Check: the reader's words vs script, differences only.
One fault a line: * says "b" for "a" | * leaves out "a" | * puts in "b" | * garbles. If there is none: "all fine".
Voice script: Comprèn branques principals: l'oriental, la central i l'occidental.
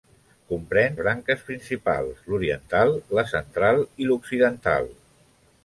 all fine